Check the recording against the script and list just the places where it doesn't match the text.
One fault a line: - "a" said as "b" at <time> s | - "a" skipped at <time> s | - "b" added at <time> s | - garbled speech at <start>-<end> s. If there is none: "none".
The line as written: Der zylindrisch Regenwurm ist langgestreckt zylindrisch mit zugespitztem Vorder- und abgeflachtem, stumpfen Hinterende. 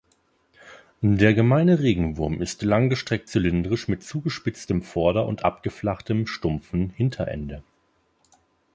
- "zylindrisch" said as "gemeine" at 1.4 s